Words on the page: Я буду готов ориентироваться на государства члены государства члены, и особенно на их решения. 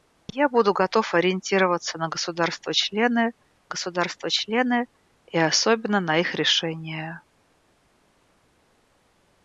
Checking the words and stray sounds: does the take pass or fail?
pass